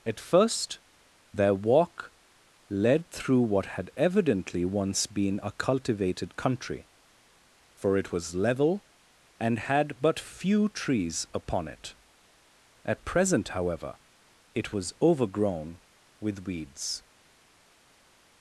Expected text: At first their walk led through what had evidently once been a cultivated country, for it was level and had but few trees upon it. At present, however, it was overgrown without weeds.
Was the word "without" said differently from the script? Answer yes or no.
yes